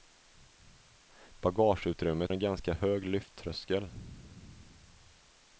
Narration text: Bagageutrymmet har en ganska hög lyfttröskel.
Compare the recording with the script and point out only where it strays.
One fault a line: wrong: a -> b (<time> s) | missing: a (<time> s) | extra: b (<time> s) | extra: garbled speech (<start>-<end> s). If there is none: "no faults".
missing: har (2.3 s)